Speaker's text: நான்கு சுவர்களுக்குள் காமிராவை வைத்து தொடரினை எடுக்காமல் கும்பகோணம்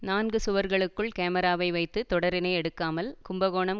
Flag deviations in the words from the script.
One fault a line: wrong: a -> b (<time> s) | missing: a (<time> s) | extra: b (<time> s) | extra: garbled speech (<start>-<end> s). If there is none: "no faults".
no faults